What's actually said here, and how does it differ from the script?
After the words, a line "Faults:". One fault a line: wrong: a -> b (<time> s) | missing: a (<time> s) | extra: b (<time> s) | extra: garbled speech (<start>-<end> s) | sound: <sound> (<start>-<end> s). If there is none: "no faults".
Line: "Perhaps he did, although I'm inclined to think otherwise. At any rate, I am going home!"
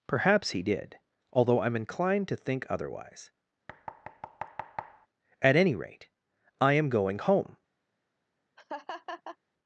"Perhaps he did, although I'm inclined to think otherwise. At any rate, I am going home!"
Faults:
sound: thud (3.7-5.1 s)
sound: laugh (8.6-9.4 s)